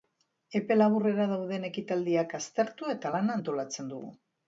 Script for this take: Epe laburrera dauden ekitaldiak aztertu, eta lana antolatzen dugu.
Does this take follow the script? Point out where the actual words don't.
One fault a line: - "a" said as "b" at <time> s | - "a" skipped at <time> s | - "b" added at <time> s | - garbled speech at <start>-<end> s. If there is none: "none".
none